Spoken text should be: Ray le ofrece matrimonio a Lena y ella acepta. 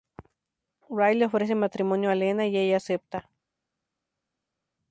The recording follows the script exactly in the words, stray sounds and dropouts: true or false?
true